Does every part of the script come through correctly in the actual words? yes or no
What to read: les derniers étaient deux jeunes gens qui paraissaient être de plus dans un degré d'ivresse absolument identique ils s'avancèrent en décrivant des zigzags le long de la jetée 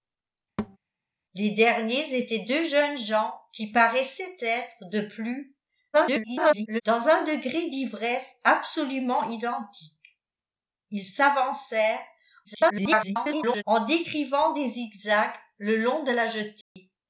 no